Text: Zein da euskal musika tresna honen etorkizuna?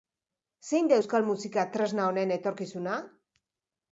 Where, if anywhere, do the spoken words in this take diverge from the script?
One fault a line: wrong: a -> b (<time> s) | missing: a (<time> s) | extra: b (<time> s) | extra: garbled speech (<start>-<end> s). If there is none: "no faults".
no faults